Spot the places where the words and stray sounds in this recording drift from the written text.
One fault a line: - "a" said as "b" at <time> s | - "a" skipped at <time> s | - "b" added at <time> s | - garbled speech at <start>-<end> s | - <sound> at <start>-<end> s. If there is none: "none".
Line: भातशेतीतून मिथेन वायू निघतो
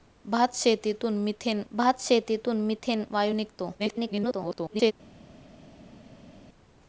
- "भातशेतीतून मिथेन" added at 1.7 s
- garbled speech at 3.8-4.9 s